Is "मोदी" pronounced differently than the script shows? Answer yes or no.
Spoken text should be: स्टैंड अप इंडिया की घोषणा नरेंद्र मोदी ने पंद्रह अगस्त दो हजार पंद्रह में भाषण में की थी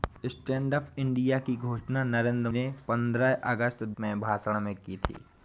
yes